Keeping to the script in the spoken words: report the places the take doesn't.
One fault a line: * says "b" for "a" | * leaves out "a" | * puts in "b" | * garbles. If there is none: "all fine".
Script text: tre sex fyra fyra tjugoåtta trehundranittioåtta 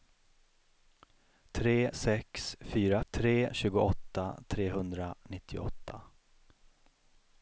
* says "tre" for "fyra"